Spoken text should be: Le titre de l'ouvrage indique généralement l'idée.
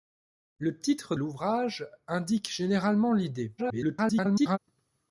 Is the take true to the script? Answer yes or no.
no